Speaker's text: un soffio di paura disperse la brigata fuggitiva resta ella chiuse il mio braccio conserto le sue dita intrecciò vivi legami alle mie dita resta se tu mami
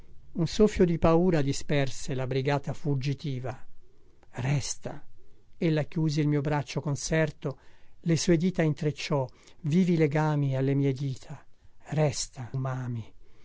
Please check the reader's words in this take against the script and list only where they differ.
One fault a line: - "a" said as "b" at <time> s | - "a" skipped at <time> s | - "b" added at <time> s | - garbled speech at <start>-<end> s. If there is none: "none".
- "se tu" skipped at 12.5 s